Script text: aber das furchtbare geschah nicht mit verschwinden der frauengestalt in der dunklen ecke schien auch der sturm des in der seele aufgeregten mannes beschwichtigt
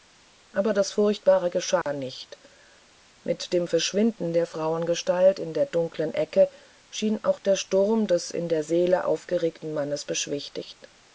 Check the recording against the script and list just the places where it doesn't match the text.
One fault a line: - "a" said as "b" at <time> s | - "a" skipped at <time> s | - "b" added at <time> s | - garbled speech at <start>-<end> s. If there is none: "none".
- "dem" added at 3.5 s